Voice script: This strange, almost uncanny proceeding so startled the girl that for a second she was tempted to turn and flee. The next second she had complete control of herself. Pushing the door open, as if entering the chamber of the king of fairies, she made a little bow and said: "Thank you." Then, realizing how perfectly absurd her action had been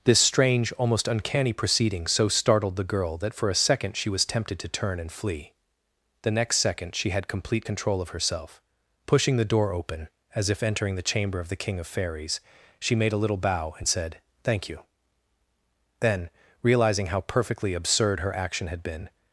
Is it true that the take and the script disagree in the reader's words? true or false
false